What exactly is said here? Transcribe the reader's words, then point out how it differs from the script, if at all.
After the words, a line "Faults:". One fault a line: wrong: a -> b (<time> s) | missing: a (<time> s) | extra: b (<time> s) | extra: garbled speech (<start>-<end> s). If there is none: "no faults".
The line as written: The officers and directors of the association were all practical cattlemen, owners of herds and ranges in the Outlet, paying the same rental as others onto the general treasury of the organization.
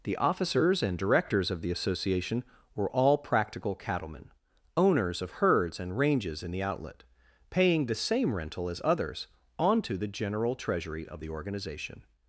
The officers and directors of the association were all practical cattlemen, owners of herds and ranges in the Outlet, paying the same rental as others onto the general treasury of the organization.
Faults:
no faults